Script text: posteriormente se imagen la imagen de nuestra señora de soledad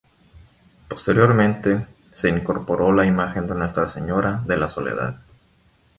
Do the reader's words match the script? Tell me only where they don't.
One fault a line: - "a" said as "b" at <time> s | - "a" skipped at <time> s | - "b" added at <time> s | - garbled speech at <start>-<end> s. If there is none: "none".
- "imagen" said as "incorporó" at 2.3 s
- "la" added at 4.6 s